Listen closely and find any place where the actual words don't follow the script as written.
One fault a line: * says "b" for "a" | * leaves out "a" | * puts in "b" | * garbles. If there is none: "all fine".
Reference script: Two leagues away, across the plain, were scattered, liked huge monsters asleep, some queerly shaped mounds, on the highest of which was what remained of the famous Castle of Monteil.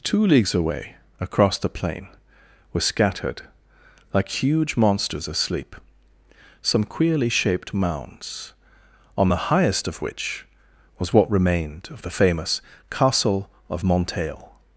* says "like" for "liked"